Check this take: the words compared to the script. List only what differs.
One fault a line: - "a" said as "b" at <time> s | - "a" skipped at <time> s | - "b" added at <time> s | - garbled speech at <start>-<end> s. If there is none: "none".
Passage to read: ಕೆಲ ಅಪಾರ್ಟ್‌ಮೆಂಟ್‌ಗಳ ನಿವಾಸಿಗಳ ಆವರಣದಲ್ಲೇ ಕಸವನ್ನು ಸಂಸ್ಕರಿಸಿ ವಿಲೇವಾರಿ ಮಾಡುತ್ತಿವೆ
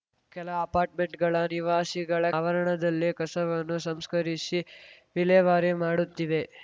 none